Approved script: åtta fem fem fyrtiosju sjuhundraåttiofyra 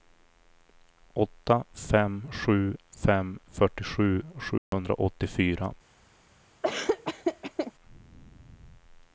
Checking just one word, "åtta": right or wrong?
right